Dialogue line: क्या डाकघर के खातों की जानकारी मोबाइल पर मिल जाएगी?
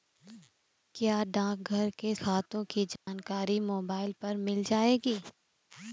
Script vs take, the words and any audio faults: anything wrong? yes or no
yes